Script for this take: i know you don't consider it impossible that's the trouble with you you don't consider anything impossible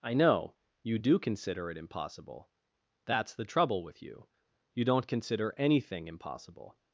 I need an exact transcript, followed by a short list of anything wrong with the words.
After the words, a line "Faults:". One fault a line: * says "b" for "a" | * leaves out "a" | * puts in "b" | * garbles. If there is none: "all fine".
i know you do consider it impossible that's the trouble with you you don't consider anything impossible
Faults:
* says "do" for "don't"